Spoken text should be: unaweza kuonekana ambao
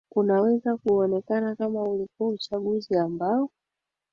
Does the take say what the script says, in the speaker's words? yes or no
no